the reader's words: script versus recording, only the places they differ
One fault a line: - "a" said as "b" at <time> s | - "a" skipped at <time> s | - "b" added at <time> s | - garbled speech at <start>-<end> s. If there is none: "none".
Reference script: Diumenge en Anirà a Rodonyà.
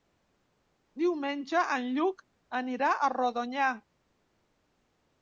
- "Lluc" added at 2.0 s